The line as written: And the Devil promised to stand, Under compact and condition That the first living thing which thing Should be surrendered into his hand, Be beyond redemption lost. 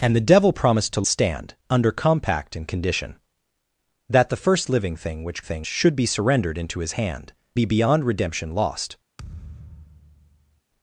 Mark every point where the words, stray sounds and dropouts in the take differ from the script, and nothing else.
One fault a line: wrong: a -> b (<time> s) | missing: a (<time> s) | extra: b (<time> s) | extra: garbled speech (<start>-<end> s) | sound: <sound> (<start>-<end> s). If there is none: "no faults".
sound: thud (9.2-10.6 s)